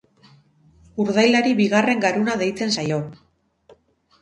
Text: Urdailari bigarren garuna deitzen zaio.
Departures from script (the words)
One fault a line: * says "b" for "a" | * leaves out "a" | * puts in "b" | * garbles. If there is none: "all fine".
all fine